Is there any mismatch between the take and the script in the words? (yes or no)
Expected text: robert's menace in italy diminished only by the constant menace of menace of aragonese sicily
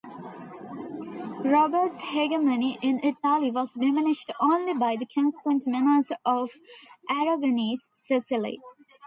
yes